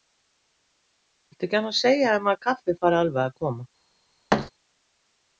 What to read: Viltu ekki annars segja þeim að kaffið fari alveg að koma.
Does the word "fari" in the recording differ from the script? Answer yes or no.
no